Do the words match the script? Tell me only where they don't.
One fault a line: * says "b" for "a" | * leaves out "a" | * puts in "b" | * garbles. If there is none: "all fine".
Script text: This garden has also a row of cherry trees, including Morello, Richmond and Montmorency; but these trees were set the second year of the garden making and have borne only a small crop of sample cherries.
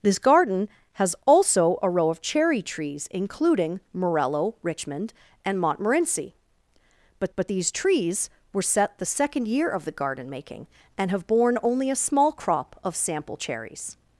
* puts in "but"